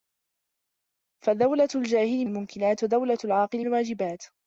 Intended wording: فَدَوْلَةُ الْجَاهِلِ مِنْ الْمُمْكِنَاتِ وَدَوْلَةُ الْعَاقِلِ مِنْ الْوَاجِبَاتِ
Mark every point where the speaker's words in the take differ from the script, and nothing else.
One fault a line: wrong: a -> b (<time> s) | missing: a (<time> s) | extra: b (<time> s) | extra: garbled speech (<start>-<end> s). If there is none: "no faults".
missing: مِنْ (2.2 s)
missing: مِنْ (3.7 s)